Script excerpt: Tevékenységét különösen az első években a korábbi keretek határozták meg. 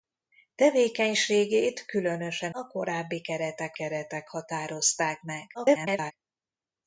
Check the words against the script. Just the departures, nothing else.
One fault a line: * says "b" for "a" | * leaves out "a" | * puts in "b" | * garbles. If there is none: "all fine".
* leaves out "az első években"
* puts in "keretek"
* garbles